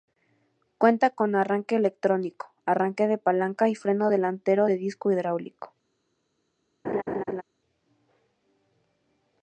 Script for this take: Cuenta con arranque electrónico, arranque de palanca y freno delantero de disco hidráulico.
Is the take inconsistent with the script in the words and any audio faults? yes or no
yes